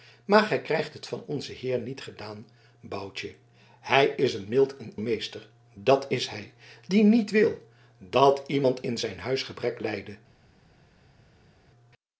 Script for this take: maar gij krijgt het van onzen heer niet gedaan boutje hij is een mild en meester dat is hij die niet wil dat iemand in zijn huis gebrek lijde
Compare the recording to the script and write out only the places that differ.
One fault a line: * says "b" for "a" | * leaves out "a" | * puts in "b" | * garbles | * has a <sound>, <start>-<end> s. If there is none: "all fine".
all fine